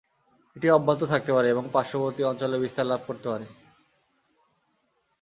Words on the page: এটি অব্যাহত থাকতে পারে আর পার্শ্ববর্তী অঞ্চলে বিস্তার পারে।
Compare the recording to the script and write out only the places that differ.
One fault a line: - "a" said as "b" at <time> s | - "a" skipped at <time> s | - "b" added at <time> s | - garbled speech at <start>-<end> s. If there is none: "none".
- "আর" said as "এবং" at 1.5 s
- "লাভ করতে" added at 2.9 s